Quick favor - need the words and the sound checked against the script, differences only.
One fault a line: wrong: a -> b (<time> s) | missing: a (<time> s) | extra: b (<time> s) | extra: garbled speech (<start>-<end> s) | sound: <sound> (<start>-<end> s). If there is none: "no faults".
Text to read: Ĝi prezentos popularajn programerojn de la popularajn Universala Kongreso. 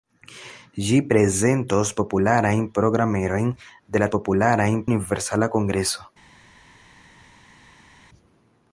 no faults